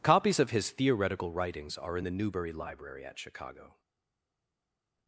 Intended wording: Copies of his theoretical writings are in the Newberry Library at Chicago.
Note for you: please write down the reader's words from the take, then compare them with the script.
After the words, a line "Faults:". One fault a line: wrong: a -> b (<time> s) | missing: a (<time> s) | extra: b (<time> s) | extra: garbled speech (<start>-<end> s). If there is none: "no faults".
Copies of his theoretical writings are in the Newberry Library at Chicago.
Faults:
no faults